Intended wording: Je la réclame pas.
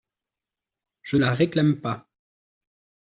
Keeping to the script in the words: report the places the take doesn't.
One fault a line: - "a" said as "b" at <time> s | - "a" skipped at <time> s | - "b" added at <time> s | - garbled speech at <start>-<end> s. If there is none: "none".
none